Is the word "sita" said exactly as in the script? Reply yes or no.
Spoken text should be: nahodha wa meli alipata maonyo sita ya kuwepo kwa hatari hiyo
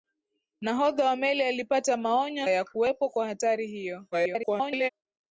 no